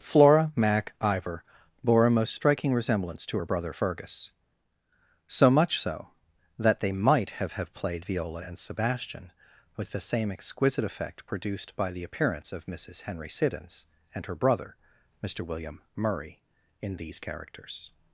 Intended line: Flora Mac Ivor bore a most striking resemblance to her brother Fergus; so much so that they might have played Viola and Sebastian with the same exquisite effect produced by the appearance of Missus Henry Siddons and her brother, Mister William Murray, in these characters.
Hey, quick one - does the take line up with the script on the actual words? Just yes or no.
no